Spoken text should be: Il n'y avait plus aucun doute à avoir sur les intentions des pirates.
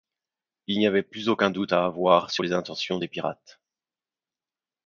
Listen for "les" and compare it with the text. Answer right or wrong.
right